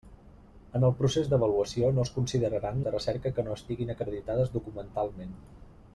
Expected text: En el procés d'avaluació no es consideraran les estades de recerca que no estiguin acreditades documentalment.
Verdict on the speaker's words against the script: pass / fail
fail